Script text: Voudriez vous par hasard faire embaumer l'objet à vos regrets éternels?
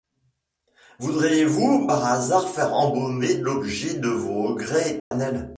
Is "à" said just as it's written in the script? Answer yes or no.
no